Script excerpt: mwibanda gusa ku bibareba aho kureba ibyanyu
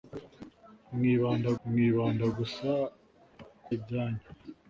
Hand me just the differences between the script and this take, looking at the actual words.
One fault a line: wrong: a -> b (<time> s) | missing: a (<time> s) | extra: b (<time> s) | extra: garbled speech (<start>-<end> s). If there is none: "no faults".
extra: mwibanda (1.7 s)
missing: bibareba aho kureba (3.7 s)